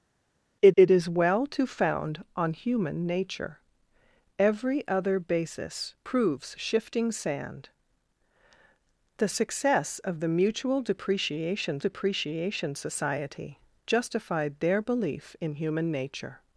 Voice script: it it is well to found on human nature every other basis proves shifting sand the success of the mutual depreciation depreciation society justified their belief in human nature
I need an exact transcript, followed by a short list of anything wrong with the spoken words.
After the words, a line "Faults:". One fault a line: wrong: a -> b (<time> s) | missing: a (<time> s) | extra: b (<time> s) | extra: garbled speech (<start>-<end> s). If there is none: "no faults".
it it is well to found on human nature every other basis proves shifting sand the success of the mutual depreciation depreciation society justified their belief in human nature
Faults:
no faults